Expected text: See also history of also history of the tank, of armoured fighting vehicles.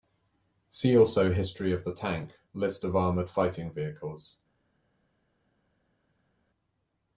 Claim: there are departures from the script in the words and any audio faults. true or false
true